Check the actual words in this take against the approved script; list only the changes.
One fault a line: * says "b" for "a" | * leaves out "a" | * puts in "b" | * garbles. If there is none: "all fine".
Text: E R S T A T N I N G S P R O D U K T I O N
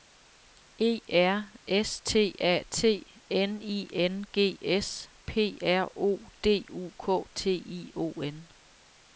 all fine